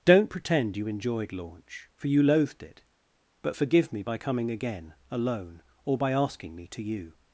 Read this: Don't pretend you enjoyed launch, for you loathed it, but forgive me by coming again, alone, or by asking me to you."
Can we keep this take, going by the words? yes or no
yes